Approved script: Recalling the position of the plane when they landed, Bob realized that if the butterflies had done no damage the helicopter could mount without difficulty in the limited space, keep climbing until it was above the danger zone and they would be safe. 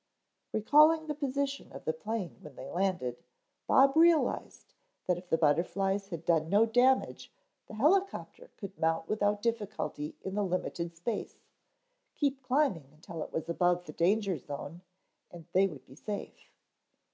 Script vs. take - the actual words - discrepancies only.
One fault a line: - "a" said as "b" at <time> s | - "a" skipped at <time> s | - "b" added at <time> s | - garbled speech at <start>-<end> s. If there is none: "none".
none